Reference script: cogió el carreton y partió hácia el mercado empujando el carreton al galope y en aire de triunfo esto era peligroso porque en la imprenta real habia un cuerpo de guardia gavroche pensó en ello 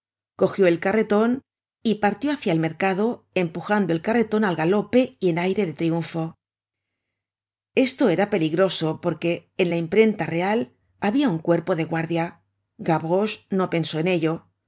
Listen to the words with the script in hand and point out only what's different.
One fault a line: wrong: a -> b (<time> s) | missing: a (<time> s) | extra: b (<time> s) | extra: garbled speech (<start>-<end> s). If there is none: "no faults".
extra: no (13.5 s)